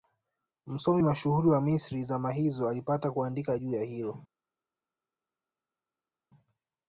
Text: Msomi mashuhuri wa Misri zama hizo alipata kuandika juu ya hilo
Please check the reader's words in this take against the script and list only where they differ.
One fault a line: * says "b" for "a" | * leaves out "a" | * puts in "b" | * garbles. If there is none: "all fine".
all fine